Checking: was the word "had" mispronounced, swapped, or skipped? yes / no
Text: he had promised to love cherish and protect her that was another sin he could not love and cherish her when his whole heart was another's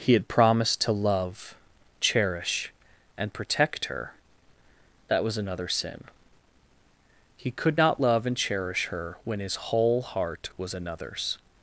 no